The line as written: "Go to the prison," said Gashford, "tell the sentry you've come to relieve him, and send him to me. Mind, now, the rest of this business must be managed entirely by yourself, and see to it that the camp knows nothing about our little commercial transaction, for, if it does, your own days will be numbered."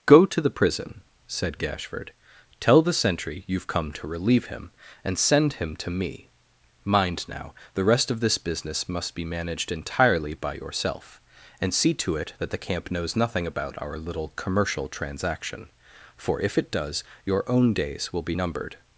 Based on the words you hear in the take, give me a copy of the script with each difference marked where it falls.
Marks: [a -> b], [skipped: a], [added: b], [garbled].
"Go to the prison," said Gashford, "tell the sentry you've come to relieve him, and send him to me. Mind, now, the rest of this business must be managed entirely by yourself, and see to it that the camp knows nothing about our little commercial transaction, for, if it does, your own days will be numbered."